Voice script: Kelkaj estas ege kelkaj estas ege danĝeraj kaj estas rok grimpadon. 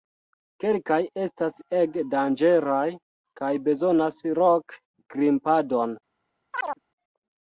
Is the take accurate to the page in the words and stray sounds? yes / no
no